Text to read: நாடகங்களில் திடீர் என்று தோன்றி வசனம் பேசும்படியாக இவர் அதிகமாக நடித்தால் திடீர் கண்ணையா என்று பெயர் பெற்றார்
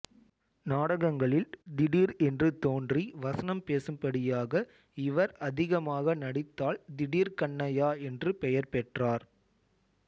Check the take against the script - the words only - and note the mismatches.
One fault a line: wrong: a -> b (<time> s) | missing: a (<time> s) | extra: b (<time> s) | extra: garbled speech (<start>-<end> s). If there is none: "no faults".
no faults